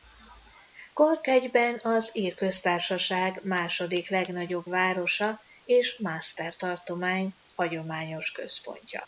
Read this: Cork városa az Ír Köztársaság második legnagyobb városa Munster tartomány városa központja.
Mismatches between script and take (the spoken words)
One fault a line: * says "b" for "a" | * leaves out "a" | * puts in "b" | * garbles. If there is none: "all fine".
* says "egyben" for "városa"
* puts in "és"
* says "hagyományos" for "városa"